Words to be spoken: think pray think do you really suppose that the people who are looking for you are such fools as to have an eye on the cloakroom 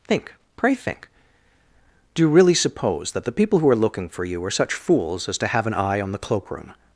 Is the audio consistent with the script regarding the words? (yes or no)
yes